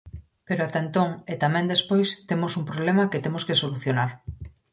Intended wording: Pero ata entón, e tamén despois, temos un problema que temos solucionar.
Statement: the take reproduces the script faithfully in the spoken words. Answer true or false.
false